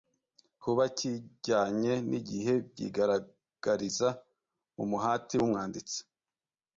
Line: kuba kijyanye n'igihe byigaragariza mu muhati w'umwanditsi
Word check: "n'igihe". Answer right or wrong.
right